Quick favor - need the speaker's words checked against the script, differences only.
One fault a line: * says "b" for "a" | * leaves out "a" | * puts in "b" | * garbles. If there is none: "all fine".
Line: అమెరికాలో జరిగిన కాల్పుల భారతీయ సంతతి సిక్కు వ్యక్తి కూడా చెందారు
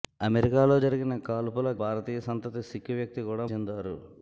all fine